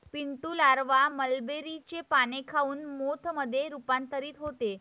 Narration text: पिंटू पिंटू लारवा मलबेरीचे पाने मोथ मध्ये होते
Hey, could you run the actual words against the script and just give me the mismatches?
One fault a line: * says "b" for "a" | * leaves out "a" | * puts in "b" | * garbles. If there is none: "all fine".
* leaves out "पिंटू"
* puts in "खाऊन"
* puts in "रूपांतरित"